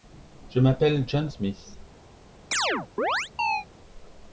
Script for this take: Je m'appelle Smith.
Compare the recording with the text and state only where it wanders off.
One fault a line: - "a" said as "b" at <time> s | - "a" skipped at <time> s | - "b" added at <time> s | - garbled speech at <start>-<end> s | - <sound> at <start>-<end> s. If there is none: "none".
- "John" added at 1.1 s
- chirp at 2.5-3.7 s